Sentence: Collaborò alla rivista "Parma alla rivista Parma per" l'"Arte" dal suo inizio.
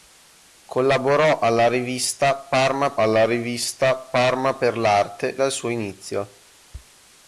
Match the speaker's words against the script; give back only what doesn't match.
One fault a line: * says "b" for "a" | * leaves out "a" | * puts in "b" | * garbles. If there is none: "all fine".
all fine